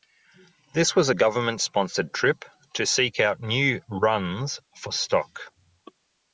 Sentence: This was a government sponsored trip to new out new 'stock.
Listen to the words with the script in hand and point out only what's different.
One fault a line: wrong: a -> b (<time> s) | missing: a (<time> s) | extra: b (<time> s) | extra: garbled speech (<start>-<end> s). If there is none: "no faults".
wrong: new -> seek (2.9 s)
extra: runs for (3.9 s)